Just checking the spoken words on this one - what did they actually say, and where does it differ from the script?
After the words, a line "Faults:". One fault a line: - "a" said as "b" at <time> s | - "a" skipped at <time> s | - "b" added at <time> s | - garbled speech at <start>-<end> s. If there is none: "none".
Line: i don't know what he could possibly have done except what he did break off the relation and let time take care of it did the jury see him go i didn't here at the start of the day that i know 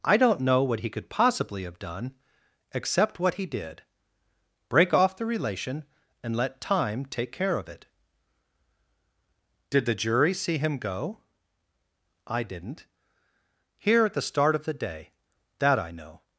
i don't know what he could possibly have done except what he did break off the relation and let time take care of it did the jury see him go i didn't here at the start of the day that i know
Faults:
none